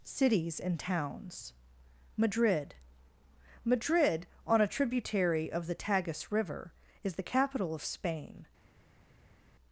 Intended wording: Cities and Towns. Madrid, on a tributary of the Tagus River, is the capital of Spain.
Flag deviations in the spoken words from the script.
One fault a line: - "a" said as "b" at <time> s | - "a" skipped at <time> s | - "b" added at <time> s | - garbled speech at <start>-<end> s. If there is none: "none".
- "Madrid" added at 3.6 s